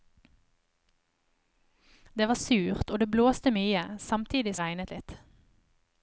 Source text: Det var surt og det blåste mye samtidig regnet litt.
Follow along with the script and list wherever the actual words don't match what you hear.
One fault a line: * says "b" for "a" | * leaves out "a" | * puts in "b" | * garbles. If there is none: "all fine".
all fine